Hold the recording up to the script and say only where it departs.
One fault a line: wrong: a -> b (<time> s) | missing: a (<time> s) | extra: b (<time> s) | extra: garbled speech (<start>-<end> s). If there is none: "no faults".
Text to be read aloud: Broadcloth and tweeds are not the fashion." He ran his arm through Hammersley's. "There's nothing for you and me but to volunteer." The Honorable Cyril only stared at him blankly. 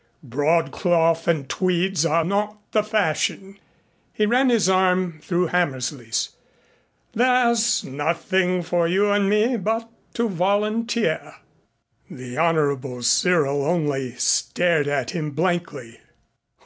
no faults